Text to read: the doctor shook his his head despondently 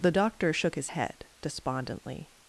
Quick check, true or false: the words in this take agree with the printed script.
false